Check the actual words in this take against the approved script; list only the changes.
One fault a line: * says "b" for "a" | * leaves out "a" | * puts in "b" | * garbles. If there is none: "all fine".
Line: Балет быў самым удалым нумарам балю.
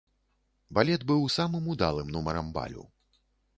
all fine